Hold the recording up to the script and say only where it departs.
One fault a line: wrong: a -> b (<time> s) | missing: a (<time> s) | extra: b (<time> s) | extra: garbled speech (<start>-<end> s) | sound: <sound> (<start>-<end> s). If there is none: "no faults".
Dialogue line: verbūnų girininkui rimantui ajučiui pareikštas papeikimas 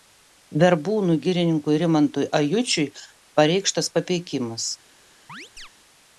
sound: chirp (5.3-5.7 s)